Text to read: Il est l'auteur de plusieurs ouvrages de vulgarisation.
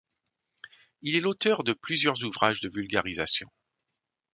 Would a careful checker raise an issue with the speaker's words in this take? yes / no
no